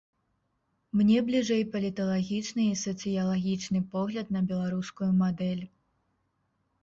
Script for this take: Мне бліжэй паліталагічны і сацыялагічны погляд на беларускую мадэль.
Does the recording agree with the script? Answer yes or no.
yes